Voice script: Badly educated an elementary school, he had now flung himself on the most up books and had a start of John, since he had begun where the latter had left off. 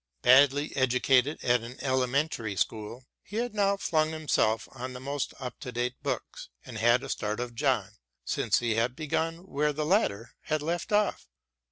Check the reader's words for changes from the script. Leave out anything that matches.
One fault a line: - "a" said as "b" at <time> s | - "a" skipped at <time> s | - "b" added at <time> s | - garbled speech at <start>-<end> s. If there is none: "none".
- "at" added at 1.4 s
- "to date" added at 5.6 s